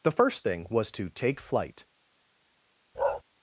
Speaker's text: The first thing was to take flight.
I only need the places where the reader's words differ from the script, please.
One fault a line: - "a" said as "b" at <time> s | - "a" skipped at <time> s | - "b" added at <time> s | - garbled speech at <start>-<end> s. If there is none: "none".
none